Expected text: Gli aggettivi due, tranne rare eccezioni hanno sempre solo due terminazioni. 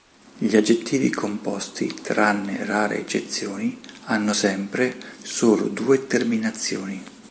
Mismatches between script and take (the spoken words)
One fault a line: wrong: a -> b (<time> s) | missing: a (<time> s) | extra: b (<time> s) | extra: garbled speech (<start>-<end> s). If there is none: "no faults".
wrong: due -> composti (1.1 s)